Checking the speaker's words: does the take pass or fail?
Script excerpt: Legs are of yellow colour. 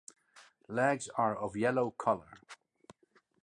pass